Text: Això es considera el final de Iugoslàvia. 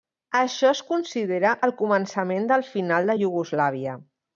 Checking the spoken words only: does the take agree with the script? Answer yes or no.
no